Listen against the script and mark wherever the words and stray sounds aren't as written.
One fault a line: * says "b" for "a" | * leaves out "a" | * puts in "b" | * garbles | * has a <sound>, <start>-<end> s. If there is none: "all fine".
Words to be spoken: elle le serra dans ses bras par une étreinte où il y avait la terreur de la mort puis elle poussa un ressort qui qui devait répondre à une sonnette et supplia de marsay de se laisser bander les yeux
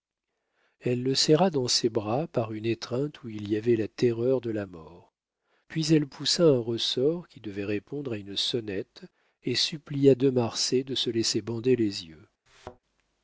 * leaves out "qui"
* has a thud, 12.5-12.8 s